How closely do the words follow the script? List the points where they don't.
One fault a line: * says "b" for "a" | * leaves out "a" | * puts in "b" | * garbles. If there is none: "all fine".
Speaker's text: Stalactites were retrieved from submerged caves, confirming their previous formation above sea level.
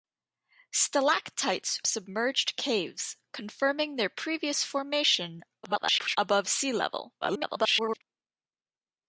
* leaves out "were retrieved from"
* garbles
* garbles